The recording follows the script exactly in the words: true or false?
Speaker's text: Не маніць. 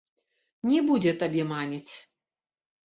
false